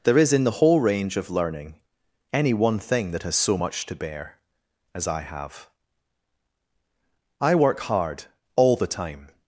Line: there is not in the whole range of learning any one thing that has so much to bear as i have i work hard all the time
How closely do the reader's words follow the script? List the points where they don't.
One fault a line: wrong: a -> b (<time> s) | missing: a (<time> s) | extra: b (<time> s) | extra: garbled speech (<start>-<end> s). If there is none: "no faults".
missing: not (0.3 s)